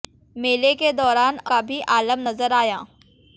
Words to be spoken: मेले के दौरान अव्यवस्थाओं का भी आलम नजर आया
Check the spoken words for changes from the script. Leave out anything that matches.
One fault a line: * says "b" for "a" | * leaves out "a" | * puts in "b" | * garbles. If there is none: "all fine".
* leaves out "अव्यवस्थाओं"